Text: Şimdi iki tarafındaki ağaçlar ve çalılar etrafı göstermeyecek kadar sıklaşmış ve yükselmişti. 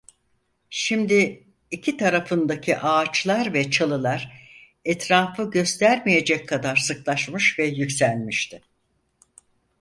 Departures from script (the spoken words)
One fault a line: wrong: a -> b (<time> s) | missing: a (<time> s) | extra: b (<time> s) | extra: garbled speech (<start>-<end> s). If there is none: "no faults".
no faults